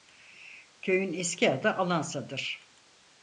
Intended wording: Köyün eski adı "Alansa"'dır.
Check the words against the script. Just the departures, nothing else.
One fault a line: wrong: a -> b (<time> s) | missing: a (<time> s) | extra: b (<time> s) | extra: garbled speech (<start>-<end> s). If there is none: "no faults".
no faults